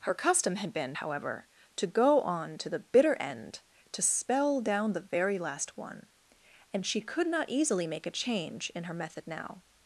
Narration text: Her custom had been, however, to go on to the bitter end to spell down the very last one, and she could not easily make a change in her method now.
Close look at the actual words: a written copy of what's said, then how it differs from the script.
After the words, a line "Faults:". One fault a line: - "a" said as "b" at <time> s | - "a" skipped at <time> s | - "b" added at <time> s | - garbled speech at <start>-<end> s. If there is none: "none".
Her custom had been, however, to go on to the bitter end to spell down the very last one, and she could not easily make a change in her method now.
Faults:
none